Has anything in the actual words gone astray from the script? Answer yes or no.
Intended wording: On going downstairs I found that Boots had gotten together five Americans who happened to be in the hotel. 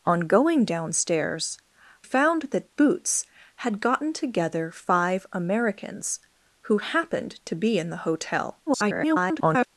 yes